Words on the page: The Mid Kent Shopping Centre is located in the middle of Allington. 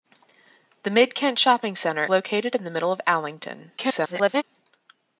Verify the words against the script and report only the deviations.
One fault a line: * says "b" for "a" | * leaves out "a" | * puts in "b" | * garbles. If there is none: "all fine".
* leaves out "is"
* garbles